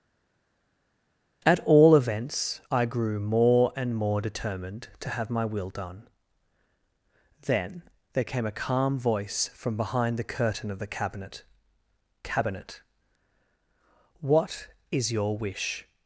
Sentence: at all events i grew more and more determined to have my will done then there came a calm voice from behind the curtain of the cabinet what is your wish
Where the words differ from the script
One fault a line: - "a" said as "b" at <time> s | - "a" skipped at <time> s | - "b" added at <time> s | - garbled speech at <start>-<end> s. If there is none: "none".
- "cabinet" added at 12.2 s